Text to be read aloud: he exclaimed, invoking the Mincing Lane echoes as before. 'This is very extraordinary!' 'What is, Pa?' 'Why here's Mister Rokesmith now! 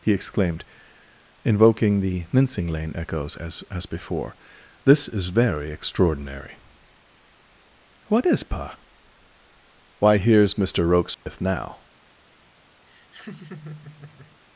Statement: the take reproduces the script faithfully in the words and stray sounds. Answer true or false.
false